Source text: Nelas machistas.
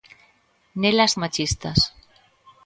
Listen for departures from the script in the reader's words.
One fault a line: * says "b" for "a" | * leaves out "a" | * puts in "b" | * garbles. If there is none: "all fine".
all fine